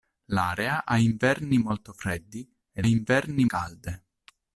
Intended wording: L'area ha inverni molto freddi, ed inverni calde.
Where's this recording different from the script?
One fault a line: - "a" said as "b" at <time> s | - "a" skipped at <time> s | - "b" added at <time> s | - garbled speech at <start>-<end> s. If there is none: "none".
none